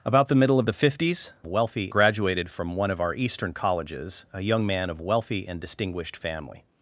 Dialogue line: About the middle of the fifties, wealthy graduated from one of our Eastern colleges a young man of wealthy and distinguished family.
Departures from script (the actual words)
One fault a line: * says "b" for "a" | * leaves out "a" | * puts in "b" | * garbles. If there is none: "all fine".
all fine